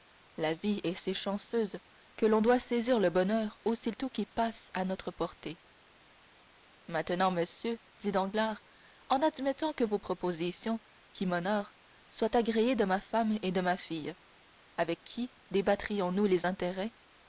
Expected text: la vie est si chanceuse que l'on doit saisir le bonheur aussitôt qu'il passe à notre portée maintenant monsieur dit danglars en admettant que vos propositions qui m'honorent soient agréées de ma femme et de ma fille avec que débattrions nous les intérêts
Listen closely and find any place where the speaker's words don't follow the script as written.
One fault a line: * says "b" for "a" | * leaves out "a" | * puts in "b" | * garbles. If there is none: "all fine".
* says "qui" for "que"